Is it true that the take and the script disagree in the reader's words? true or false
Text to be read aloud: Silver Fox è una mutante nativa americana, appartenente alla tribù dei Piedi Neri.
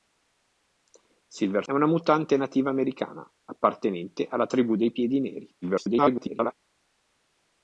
true